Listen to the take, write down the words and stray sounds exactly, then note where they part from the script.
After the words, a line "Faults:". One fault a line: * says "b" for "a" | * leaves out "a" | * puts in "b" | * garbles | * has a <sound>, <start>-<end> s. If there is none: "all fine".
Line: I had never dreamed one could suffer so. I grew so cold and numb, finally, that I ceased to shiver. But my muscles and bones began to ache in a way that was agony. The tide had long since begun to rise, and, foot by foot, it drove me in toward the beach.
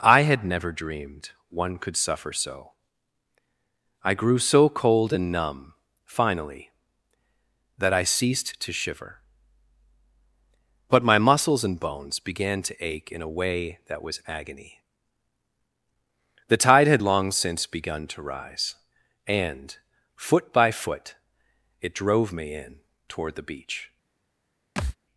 I had never dreamed one could suffer so. I grew so cold and numb, finally, that I ceased to shiver. But my muscles and bones began to ache in a way that was agony. The tide had long since begun to rise, and, foot by foot, it drove me in toward the beach.
Faults:
* has a thud, 24.8-25.0 s